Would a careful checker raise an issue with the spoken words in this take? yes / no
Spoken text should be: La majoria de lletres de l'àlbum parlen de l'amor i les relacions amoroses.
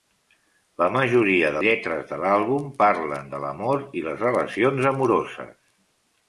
no